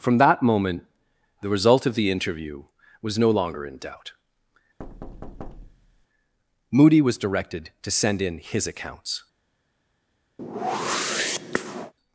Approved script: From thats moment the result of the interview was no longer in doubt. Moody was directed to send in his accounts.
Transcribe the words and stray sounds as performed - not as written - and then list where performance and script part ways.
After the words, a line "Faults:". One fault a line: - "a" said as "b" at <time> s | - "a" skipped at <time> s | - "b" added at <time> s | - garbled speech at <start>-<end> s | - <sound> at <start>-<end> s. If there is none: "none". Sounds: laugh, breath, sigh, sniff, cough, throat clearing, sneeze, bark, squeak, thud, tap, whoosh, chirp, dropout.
From that moment the result of the interview was no longer in doubt. Moody was directed to send in his accounts.
Faults:
- "thats" said as "that" at 0.2 s
- thud at 4.8-6.1 s
- whoosh at 10.4-11.9 s